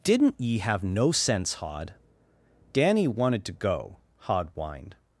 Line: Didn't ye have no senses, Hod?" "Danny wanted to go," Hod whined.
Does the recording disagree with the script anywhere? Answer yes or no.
yes